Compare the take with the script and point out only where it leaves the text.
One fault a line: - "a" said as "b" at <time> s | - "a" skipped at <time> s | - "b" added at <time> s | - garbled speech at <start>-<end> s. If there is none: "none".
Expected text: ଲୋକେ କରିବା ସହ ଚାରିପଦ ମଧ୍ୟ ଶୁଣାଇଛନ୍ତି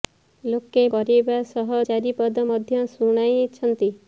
none